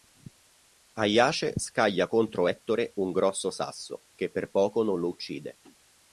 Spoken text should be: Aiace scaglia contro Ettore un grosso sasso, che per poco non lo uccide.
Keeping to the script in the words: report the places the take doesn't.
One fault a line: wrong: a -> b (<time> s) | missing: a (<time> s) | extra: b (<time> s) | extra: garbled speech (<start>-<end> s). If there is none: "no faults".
no faults